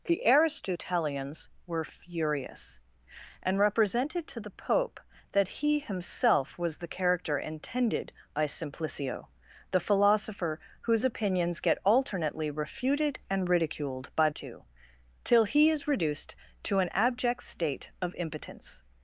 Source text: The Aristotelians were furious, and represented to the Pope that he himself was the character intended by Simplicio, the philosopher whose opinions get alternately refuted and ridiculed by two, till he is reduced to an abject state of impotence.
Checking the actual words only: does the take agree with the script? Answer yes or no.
yes